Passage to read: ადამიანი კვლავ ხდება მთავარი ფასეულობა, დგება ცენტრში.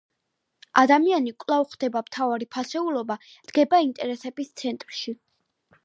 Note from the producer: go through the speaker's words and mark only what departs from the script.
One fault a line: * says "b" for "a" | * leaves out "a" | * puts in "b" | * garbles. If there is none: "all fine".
* puts in "ინტერესების"